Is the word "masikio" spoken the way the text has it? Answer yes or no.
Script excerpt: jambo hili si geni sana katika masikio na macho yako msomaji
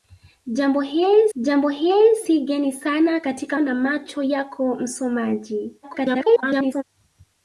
no